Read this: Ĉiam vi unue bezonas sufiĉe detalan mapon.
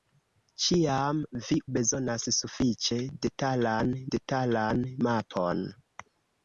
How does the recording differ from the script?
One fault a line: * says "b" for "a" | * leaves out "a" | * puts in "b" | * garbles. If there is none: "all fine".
* leaves out "unue"
* puts in "detalan"